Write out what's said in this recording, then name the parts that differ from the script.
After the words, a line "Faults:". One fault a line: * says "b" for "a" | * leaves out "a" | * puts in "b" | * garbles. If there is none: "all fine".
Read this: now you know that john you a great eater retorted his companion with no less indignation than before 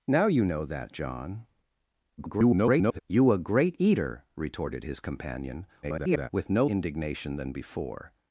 now you know that john [garbled] you a great eater retorted his companion [garbled] with no indignation than before
Faults:
* garbles
* garbles
* leaves out "less"